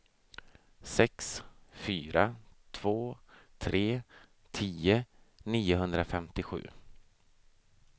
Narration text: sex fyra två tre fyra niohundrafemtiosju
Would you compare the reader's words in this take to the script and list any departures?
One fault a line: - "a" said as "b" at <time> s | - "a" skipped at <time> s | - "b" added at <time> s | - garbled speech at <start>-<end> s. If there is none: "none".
- "fyra" said as "tio" at 4.5 s